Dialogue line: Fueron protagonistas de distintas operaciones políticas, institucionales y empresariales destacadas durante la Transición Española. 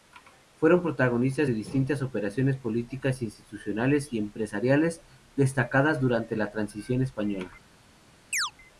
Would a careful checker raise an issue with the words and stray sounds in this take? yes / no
yes